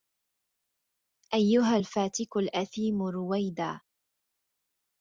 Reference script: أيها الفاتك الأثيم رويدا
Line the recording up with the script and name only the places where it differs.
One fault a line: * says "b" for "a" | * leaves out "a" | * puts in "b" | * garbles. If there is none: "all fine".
all fine